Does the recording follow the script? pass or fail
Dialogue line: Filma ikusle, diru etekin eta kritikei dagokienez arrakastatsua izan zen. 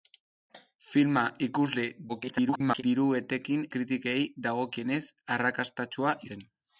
fail